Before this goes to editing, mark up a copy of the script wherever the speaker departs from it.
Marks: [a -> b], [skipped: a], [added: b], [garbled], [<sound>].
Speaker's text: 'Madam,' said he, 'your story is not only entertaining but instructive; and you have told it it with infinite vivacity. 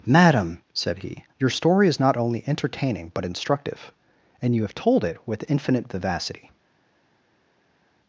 'Madam,' said he, 'your story is not only entertaining but instructive; and you have told it [skipped: it] with infinite vivacity.